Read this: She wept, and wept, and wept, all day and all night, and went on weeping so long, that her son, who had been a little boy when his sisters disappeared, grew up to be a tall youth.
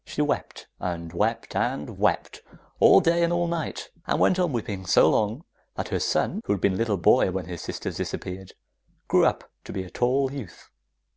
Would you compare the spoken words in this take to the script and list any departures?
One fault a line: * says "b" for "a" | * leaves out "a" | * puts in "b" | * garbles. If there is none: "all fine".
all fine